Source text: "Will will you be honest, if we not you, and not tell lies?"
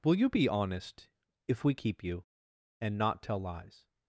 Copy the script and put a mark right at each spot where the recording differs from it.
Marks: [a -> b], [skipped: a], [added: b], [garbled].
"Will [skipped: will] you be honest, if we [not -> keep] you, and not tell lies?"